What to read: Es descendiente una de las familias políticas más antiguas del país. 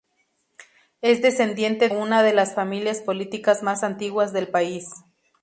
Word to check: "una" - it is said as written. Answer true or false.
true